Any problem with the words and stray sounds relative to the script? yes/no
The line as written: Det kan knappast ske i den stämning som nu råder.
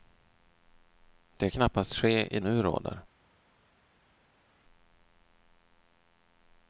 yes